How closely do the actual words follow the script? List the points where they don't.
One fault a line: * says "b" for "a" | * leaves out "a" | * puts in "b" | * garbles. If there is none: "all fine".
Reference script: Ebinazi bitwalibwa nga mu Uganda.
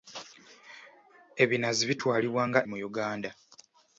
all fine